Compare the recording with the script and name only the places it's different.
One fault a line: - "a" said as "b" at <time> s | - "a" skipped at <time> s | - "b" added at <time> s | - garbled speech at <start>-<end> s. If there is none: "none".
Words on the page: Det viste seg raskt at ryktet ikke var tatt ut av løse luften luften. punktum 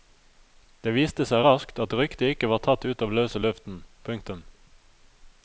- "luften" skipped at 3.8 s